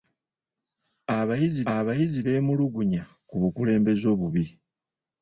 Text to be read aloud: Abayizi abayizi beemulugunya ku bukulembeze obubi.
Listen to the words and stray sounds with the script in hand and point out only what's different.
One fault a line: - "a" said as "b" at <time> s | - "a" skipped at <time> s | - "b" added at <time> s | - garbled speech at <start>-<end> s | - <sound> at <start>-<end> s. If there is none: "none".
none